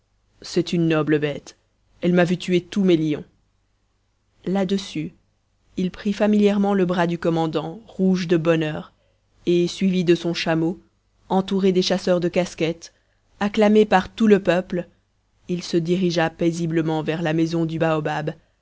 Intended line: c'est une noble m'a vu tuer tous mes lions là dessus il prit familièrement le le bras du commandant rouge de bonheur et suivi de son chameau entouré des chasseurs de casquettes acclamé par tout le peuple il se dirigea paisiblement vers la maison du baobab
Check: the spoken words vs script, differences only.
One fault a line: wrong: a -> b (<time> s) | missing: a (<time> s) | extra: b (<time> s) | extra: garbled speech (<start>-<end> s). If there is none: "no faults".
extra: bête elle (1.2 s)
missing: le (6.8 s)